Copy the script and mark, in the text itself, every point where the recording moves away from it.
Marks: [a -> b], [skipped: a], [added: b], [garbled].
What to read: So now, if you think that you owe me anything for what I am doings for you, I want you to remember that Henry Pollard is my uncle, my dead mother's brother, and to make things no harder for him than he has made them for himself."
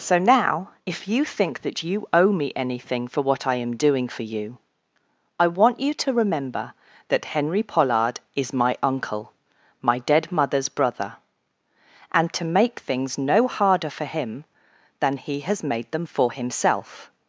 So now, if you think that you owe me anything for what I am [doings -> doing] for you, I want you to remember that Henry Pollard is my uncle, my dead mother's brother, and to make things no harder for him than he has made them for himself."